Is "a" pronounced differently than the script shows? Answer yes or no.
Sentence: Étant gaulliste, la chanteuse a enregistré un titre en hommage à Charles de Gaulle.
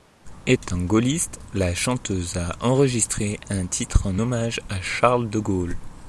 no